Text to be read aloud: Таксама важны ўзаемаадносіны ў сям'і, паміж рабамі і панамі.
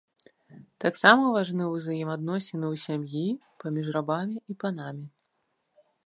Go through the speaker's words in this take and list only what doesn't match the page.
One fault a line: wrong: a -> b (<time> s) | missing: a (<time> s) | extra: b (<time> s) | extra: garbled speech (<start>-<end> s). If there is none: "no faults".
no faults